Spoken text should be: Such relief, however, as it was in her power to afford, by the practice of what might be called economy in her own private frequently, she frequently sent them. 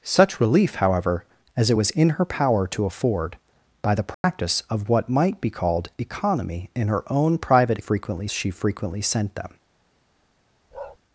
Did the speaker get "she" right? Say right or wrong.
right